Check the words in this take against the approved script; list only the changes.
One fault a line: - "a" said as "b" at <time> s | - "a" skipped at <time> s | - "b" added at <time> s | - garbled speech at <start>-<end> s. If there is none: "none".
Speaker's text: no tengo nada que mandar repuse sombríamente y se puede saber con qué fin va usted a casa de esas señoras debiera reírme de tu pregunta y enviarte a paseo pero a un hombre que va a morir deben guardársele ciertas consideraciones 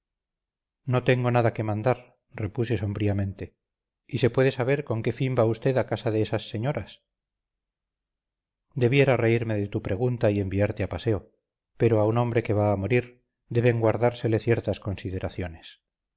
none